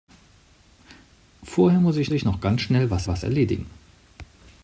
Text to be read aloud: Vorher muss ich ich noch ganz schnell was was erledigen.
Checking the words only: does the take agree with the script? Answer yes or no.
yes